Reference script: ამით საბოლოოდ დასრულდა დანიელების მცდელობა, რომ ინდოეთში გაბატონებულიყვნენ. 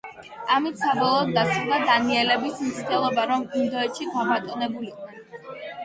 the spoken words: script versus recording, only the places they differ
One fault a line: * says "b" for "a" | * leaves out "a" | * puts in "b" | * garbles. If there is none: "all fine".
all fine